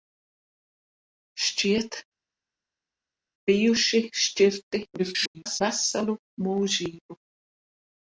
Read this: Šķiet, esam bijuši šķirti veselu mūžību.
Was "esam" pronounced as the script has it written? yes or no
no